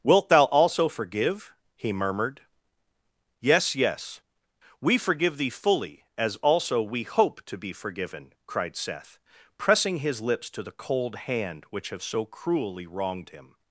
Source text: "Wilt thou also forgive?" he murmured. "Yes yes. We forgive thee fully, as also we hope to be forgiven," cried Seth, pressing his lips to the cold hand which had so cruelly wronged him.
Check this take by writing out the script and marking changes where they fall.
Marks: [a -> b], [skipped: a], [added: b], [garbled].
"Wilt thou also forgive?" he murmured. "Yes yes. We forgive thee fully, as also we hope to be forgiven," cried Seth, pressing his lips to the cold hand which [had -> have] so cruelly wronged him.